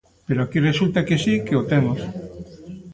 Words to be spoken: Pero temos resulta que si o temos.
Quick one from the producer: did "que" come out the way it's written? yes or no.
yes